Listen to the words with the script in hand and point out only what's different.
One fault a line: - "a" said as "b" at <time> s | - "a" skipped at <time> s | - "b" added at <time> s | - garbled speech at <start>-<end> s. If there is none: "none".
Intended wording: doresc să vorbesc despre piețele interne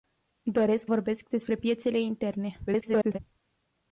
- "să" skipped at 0.9 s
- garbled speech at 2.7-3.2 s